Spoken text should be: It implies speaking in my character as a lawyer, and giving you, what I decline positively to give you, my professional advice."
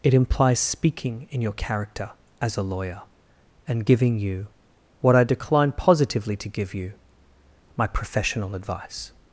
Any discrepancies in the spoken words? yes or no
yes